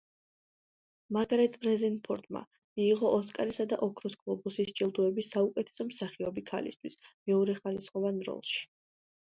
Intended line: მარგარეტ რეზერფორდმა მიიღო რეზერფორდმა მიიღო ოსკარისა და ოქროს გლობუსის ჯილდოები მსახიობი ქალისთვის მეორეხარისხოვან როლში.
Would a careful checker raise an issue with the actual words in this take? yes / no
yes